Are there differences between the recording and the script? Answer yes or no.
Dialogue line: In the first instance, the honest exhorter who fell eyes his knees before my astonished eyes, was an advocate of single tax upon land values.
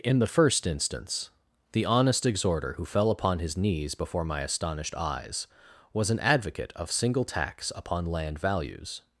yes